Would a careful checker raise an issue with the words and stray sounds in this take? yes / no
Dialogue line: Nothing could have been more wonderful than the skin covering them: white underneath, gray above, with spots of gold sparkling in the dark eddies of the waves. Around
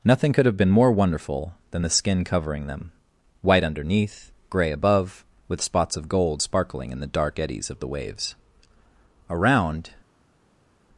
no